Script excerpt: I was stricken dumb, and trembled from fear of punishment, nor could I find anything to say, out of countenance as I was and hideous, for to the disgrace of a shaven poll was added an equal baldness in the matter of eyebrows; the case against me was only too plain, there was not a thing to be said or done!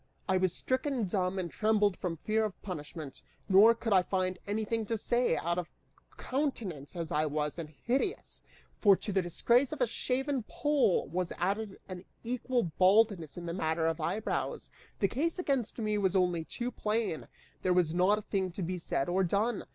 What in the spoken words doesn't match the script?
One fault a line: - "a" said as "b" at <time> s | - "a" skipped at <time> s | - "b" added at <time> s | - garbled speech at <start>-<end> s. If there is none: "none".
none